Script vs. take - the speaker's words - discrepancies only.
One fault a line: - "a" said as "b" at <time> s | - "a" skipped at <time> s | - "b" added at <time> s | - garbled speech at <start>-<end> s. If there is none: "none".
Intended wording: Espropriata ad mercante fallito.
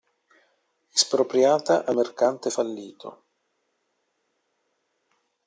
none